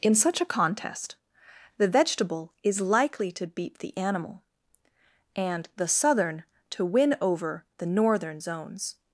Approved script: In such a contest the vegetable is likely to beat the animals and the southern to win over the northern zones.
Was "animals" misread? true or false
true